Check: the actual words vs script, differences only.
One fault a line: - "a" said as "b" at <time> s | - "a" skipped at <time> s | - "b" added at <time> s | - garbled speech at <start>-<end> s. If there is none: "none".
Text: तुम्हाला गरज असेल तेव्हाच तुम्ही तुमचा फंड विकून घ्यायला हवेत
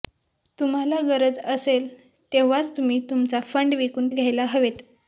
none